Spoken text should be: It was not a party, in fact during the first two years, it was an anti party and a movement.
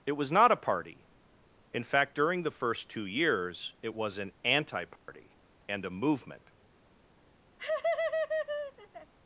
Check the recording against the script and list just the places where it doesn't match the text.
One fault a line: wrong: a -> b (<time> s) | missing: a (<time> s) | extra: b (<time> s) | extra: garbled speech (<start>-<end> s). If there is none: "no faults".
no faults